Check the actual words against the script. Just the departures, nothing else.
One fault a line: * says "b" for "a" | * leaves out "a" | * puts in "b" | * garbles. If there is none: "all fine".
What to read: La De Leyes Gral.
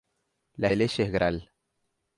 all fine